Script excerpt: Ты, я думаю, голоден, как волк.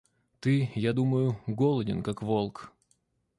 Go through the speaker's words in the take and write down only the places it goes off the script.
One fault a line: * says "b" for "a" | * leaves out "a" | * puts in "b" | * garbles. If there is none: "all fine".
all fine